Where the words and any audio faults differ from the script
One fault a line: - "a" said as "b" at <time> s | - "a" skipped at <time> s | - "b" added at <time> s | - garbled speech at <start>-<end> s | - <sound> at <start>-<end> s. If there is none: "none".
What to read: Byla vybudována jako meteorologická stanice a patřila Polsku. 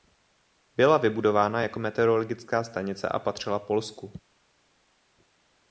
none